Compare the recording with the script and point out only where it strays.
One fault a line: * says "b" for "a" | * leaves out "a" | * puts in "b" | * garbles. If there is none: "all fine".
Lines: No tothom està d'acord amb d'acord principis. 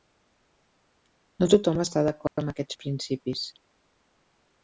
* says "aquests" for "d'acord"